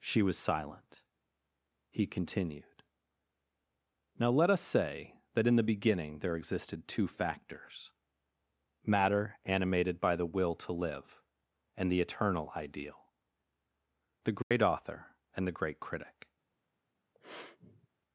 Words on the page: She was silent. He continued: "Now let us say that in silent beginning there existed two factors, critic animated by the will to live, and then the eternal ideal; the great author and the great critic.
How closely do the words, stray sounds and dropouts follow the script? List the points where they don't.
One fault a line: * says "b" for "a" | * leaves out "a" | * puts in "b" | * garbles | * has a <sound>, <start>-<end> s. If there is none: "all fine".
* says "the" for "silent"
* says "matter" for "critic"
* leaves out "then"
* has a dropout, 14.4-14.5 s
* has a sniff, 17.1-17.9 s